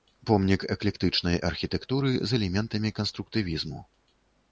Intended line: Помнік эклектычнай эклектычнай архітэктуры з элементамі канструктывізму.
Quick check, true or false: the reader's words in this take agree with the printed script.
false